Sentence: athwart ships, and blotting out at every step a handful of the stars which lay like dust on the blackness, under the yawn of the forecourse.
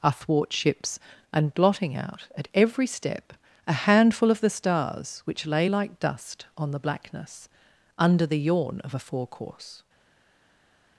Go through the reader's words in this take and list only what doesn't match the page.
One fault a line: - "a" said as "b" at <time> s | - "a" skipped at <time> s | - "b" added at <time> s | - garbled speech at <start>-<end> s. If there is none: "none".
- "the" said as "a" at 8.9 s